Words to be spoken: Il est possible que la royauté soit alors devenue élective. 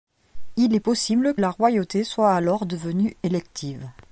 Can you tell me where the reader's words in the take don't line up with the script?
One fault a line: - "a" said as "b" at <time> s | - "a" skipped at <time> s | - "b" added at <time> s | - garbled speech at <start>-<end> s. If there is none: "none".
- "que" skipped at 1.4 s